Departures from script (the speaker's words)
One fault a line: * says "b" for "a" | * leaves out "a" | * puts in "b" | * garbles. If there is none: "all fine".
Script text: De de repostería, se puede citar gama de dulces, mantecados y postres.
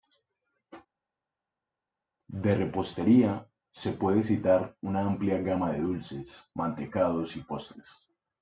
* leaves out "de"
* puts in "una amplia"